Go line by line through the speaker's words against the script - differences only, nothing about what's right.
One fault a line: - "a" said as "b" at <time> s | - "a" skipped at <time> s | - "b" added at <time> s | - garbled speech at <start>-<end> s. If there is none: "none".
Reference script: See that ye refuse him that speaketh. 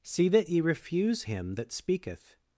none